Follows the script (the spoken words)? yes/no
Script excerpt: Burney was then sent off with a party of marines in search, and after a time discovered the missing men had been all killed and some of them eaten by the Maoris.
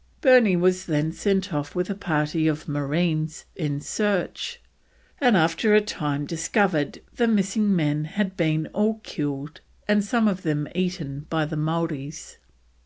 yes